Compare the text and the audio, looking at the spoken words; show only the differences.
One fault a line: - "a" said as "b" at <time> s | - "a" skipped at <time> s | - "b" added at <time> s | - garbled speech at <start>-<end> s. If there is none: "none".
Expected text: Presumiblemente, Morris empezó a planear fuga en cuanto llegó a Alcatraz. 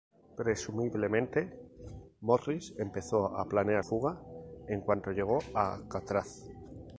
none